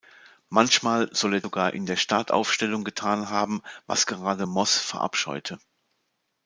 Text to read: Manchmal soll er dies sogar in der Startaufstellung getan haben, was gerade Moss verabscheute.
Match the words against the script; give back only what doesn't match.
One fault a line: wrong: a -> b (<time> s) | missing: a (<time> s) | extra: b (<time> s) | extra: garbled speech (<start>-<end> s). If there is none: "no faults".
missing: dies (1.4 s)